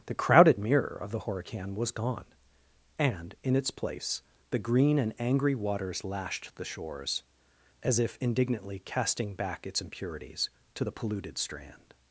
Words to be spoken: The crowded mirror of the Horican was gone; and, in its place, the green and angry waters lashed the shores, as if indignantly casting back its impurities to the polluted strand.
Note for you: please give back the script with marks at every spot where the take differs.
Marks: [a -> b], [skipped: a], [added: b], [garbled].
The crowded mirror of the Horican was gone; and, in its place, the green and angry waters lashed the shores, as if indignantly casting back its impurities to the polluted strand.